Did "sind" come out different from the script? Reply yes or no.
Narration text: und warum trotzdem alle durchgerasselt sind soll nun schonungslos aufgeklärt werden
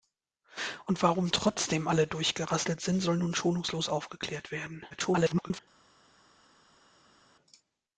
no